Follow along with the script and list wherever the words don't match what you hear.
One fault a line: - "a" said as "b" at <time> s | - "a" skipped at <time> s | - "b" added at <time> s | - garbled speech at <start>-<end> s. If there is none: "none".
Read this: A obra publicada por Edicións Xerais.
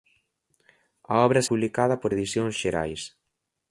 none